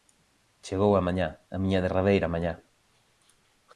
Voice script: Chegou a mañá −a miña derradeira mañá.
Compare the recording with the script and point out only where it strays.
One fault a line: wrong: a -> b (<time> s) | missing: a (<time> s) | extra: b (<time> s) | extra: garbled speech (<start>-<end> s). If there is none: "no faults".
no faults